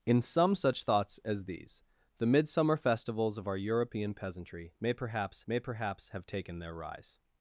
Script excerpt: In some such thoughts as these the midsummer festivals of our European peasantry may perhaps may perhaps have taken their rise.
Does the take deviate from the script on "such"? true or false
false